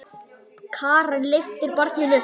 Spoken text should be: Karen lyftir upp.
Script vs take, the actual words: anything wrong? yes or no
yes